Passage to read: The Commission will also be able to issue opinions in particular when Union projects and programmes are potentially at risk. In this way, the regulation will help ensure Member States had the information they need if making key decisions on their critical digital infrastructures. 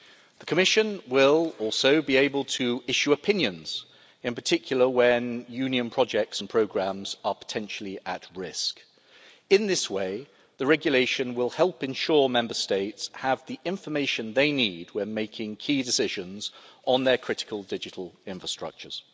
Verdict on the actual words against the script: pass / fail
fail